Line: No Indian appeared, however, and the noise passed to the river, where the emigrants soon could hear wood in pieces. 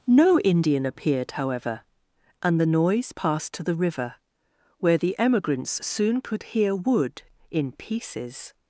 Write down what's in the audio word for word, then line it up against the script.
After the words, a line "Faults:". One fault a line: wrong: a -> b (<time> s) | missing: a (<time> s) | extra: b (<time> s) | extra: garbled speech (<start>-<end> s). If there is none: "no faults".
No Indian appeared, however, and the noise passed to the river, where the emigrants soon could hear wood in pieces.
Faults:
no faults